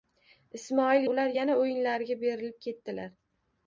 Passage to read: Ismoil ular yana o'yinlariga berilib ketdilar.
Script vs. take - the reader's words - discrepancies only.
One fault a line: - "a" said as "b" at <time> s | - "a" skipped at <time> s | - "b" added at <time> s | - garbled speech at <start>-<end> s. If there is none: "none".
none